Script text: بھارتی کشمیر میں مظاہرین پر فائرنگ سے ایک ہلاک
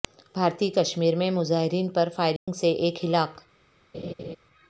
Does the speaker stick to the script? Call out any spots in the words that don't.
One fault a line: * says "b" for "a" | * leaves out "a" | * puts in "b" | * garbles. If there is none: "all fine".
all fine